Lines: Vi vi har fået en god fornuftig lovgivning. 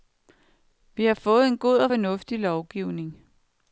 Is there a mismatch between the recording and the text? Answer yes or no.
yes